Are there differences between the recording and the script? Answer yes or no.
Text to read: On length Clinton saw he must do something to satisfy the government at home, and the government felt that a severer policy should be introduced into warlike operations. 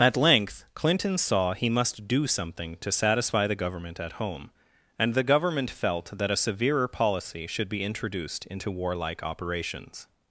yes